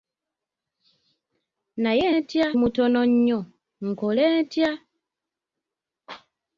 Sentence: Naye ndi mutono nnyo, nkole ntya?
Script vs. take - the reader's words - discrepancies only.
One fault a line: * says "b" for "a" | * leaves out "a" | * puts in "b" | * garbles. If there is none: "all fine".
* says "ntya" for "ndi"